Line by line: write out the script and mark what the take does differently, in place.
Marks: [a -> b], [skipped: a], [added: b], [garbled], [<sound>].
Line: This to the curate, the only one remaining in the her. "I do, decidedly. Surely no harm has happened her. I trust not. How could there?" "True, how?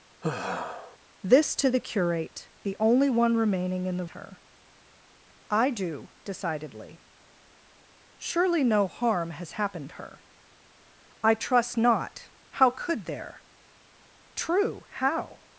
[sigh] This to the curate, the only one remaining in the her. "I do, decidedly. Surely no harm has happened her. I trust not. How could there?" "True, how?